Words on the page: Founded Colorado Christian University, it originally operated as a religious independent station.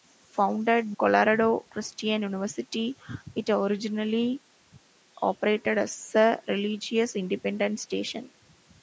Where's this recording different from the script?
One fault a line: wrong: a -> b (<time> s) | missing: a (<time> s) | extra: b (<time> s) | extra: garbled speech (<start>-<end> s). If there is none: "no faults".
no faults